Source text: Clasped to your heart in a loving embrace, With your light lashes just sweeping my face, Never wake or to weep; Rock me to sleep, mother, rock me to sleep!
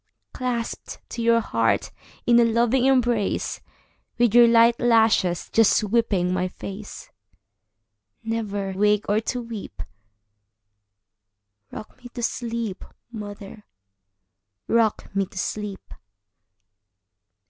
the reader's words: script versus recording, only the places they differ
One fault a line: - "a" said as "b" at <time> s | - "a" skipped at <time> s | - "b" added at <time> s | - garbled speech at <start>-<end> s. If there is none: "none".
none